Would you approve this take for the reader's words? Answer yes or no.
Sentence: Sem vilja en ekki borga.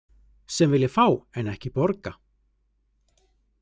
no